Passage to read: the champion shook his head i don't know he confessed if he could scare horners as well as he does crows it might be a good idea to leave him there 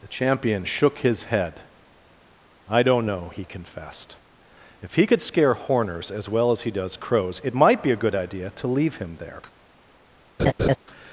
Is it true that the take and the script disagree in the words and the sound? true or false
true